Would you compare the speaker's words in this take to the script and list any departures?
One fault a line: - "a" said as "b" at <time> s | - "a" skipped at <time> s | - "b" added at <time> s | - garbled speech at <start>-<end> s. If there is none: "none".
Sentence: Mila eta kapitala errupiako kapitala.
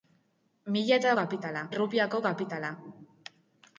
none